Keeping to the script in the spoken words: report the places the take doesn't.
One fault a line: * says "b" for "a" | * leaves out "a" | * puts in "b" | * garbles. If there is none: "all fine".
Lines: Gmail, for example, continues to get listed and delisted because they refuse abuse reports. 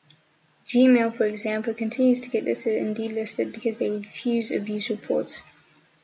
all fine